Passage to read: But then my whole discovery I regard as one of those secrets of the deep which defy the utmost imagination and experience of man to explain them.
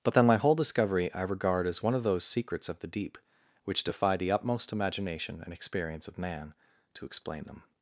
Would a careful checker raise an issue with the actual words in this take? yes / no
no